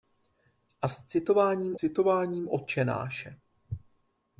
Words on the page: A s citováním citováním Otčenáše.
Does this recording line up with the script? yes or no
yes